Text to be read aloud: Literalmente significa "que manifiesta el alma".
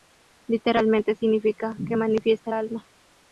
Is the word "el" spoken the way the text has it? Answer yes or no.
no